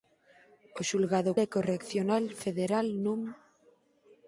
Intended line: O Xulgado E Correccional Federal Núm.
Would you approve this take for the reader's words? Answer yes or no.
yes